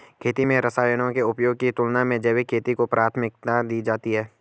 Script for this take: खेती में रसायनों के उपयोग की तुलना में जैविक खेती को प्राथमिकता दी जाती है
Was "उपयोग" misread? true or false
false